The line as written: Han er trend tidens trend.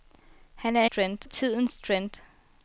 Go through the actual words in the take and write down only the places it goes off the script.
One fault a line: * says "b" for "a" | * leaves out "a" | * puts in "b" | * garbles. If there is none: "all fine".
all fine